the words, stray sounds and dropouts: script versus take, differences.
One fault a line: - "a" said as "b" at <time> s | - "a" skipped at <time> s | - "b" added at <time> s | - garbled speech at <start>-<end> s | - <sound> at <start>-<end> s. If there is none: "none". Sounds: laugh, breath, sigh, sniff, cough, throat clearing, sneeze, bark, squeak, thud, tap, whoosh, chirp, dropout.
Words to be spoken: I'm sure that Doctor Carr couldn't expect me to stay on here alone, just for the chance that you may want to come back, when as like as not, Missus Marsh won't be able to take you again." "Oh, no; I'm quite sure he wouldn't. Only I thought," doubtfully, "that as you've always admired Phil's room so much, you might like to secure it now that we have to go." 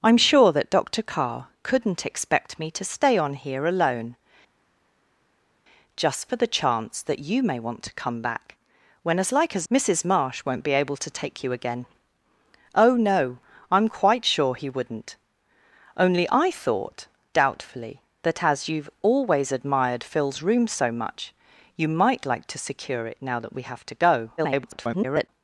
- "not" skipped at 9.7 s
- garbled speech at 24.4-25.3 s